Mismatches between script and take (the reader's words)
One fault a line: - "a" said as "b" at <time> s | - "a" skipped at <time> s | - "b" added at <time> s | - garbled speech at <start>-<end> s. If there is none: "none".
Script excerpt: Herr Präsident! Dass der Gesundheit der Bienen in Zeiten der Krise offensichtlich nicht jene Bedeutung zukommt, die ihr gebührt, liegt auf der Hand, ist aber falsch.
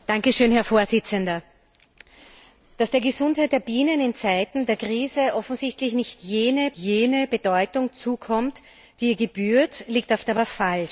- "jene" added at 6.8 s
- "der Hand ist" skipped at 10.2 s